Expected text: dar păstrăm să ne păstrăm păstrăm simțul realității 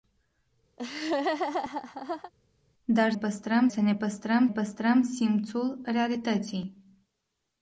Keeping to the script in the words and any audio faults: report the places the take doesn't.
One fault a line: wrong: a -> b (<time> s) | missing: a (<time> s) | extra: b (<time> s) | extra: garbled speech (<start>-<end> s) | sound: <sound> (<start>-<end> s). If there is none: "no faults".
sound: laugh (0.8-2.3 s)